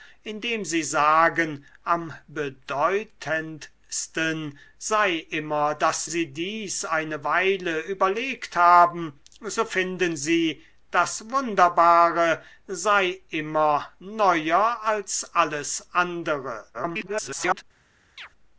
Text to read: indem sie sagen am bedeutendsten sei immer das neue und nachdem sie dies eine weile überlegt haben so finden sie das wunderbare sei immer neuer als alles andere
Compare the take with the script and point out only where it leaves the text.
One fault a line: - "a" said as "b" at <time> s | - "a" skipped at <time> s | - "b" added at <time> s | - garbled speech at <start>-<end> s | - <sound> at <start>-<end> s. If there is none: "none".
- "neue und nachdem" skipped at 6.1 s
- garbled speech at 16.7-17.6 s
- chirp at 18.2-18.3 s